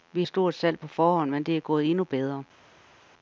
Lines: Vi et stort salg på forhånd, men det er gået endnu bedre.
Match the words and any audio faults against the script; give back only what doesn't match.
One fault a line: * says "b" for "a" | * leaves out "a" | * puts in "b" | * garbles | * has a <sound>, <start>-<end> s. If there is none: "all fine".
all fine